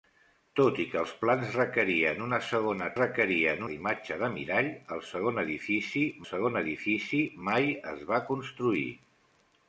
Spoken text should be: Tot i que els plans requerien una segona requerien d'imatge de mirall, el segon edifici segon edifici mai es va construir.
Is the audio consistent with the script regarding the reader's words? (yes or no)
yes